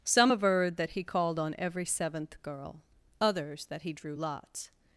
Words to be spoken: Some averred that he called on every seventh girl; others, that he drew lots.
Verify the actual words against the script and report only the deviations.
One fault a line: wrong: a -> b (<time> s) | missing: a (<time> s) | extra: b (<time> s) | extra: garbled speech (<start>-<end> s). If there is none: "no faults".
no faults